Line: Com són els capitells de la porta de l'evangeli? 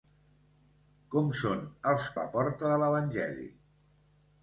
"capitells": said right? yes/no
no